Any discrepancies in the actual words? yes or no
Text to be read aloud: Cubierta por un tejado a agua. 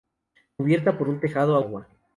no